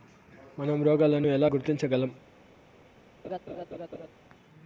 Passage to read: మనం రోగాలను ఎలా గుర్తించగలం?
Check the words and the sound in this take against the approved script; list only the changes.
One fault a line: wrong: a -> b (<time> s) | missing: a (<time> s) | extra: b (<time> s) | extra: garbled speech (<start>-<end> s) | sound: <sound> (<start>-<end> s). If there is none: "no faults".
sound: laugh (3.2-4.1 s)